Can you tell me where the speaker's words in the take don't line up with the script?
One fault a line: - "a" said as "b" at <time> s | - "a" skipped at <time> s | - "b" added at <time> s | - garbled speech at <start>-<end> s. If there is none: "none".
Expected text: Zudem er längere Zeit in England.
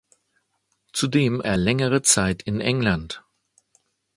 none